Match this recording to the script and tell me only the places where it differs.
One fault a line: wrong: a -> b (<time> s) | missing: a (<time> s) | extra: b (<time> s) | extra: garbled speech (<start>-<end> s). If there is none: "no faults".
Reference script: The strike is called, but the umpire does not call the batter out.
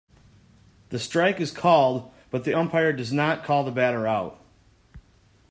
no faults